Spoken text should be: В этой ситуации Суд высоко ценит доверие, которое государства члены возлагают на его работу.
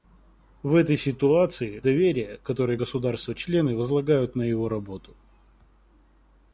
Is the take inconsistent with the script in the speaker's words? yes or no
yes